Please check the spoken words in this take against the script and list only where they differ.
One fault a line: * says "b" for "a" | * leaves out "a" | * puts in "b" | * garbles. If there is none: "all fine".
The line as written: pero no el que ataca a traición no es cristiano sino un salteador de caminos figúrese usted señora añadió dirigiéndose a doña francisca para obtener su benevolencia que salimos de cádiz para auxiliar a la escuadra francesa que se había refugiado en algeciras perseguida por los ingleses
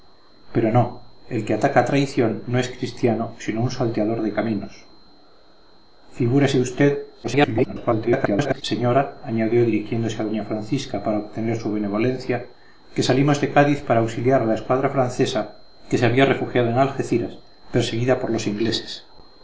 * garbles